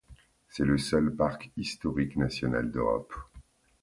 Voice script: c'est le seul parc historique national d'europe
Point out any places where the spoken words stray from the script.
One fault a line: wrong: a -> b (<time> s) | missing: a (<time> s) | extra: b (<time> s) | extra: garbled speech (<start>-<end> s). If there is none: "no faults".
no faults